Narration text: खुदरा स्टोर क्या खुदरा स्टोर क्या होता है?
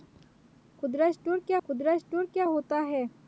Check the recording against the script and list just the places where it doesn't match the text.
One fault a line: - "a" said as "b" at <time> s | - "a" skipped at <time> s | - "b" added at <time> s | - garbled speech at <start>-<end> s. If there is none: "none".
none